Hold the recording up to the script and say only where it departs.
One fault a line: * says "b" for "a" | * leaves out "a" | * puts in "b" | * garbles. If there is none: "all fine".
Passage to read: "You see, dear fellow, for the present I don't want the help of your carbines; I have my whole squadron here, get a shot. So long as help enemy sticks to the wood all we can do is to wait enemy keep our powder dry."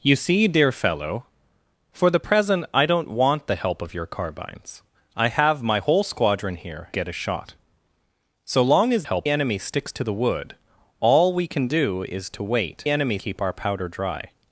all fine